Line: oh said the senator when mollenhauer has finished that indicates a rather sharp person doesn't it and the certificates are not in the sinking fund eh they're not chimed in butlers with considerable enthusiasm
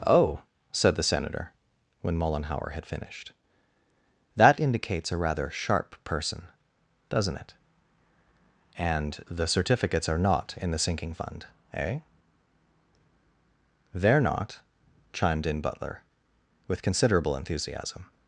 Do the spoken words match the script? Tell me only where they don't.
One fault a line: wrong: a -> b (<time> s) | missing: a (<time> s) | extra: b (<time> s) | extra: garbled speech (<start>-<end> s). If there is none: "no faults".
wrong: has -> had (2.7 s)
wrong: butlers -> butler (15.6 s)